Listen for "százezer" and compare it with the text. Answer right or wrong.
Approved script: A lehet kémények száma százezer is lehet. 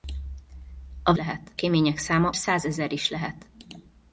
right